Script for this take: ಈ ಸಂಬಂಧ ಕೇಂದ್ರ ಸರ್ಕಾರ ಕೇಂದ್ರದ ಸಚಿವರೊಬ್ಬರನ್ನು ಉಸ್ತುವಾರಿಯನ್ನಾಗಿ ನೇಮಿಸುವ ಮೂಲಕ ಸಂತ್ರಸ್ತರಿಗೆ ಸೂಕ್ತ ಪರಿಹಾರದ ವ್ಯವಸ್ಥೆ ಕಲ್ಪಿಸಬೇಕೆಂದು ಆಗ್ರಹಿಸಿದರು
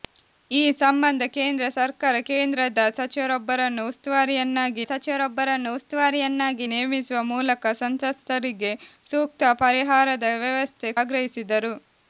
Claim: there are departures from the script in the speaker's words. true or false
true